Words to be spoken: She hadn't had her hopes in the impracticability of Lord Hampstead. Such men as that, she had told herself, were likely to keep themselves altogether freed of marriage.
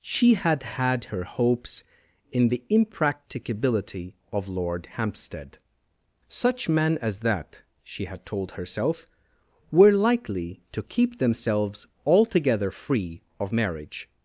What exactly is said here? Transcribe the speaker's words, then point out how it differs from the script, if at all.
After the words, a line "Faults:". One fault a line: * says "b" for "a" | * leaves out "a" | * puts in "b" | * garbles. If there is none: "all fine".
She had had her hopes in the impracticability of Lord Hampstead. Such men as that, she had told herself, were likely to keep themselves altogether free of marriage.
Faults:
* says "had" for "hadn't"
* says "free" for "freed"